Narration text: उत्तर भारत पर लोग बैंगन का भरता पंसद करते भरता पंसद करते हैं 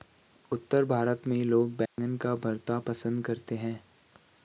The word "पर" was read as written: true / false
false